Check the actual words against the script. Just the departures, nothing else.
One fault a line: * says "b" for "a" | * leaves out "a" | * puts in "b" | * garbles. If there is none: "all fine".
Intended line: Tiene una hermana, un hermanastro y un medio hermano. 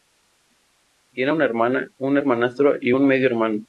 all fine